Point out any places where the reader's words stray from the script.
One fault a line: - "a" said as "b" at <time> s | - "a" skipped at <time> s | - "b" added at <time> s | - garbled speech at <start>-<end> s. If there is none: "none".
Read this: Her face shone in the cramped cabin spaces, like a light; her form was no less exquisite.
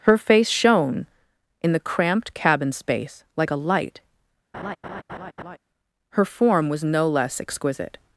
- "spaces" said as "space" at 2.7 s